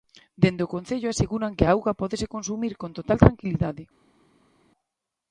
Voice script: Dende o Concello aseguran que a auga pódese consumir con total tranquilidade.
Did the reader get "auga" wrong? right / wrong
right